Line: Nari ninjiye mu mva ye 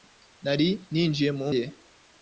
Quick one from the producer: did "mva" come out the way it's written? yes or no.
no